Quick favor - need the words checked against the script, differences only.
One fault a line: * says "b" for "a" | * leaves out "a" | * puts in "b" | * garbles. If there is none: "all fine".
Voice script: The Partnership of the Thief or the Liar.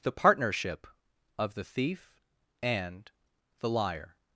* says "and" for "or"